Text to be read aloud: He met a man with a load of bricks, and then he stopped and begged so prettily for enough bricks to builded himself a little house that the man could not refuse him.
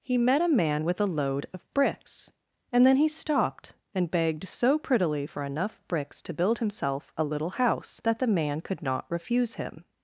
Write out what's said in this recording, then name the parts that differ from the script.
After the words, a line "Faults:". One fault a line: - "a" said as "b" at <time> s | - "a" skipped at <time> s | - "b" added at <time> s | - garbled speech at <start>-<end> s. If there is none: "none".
He met a man with a load of bricks, and then he stopped and begged so prettily for enough bricks to build himself a little house that the man could not refuse him.
Faults:
- "builded" said as "build" at 6.3 s